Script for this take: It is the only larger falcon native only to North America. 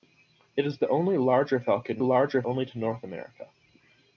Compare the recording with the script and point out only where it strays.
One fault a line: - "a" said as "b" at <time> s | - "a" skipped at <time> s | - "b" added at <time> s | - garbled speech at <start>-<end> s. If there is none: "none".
- "native" said as "larger" at 2.0 s